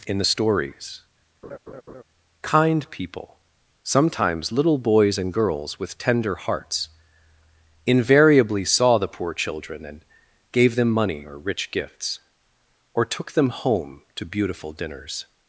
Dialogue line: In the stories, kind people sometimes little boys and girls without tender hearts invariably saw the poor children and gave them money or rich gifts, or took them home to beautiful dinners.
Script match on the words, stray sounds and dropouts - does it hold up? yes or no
no